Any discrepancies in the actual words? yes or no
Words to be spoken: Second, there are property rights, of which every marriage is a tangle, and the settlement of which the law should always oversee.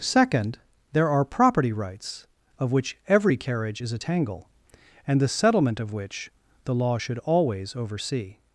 yes